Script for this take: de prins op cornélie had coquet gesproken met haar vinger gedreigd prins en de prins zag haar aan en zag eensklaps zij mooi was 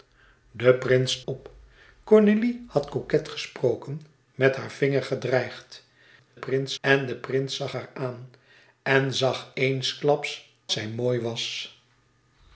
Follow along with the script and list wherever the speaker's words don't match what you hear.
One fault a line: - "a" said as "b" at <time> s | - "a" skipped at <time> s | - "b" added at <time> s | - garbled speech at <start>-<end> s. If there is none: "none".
none